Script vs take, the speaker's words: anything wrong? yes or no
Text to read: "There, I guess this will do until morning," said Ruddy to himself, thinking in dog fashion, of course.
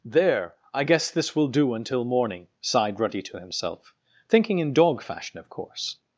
yes